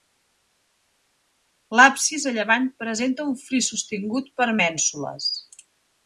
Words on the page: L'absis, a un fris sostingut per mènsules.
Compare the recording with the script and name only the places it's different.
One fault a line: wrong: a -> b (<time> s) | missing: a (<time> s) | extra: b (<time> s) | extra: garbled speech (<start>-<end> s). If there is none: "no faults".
extra: llevant presenta (2.4 s)